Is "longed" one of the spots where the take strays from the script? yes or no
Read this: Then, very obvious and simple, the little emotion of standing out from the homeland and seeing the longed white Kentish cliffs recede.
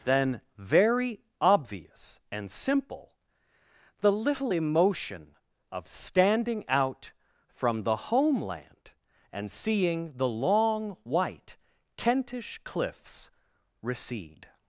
yes